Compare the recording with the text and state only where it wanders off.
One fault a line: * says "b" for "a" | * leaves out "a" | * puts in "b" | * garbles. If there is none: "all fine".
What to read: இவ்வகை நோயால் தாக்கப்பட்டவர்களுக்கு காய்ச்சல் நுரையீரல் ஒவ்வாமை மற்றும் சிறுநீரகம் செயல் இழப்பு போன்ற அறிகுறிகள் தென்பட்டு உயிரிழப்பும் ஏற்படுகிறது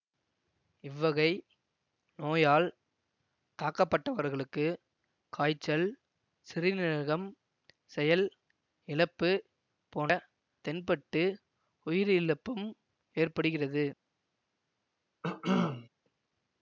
* leaves out "நுரையீரல் ஒவ்வாமை மற்றும்"
* leaves out "அறிகுறிகள்"